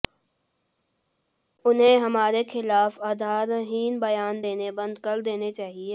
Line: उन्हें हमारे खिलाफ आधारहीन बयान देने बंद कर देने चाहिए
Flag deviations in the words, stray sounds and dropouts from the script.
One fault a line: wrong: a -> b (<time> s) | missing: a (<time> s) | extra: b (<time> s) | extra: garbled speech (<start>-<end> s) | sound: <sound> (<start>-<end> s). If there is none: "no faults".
no faults